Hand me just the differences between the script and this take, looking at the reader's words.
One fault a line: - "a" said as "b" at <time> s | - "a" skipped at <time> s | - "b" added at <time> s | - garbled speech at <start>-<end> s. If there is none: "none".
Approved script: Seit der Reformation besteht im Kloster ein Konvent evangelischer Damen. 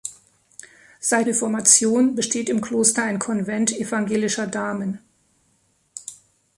- "der" skipped at 1.3 s